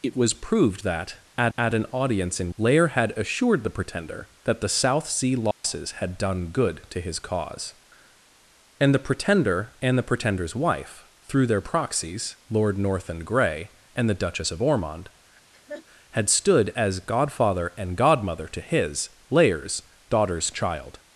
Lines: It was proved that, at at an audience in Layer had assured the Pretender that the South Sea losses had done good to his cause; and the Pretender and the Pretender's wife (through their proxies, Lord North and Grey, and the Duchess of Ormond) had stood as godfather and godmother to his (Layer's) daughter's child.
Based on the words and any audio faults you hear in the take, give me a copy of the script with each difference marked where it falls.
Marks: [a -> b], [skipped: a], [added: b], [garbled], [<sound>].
It was proved that, at at an audience in Layer had assured the Pretender that the South Sea losses [dropout] had done good to his cause; and the Pretender and the Pretender's wife (through their proxies, Lord North and Grey, and the Duchess of Ormond) [laugh] had stood as godfather and godmother to his (Layer's) daughter's child.